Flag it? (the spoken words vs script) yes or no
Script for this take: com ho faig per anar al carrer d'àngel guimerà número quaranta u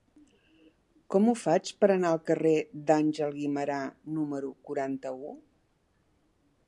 no